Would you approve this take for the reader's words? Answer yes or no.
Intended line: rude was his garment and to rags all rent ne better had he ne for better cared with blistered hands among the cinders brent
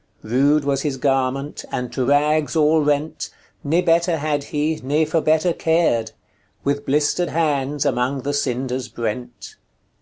yes